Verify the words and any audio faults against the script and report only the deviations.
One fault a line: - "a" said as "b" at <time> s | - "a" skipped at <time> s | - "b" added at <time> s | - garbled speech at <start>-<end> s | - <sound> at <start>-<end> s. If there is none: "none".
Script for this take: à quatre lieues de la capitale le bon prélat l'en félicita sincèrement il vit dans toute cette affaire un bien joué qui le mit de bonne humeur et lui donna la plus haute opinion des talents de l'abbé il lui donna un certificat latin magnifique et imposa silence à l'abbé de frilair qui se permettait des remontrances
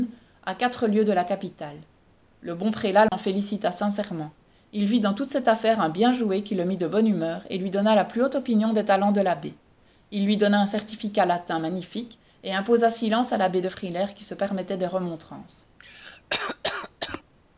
- dropout at 3.1-3.1 s
- cough at 15.8-17.2 s